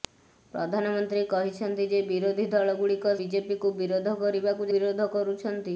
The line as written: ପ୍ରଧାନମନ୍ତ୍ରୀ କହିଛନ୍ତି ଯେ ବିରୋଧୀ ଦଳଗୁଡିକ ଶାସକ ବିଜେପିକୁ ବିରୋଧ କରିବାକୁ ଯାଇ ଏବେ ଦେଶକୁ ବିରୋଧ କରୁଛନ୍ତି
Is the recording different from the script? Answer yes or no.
yes